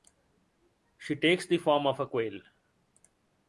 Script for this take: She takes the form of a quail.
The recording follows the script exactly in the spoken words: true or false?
true